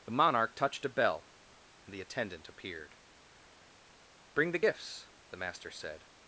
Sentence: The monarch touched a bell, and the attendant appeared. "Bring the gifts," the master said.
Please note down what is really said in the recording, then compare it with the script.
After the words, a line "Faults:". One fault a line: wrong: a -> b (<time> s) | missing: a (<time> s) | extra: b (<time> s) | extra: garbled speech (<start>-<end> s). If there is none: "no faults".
The monarch touched a bell, and the attendant appeared. "Bring the gifts," the master said.
Faults:
no faults